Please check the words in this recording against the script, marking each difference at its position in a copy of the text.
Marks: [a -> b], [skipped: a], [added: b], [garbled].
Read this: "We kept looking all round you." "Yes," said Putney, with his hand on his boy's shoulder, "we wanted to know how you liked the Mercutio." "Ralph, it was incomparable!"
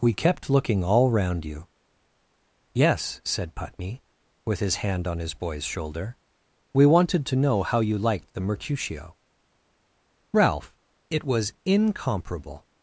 "We kept looking all round you." "Yes," said Putney, with his hand on his boy's shoulder, "we wanted to know how you liked the Mercutio." "Ralph, it was incomparable!"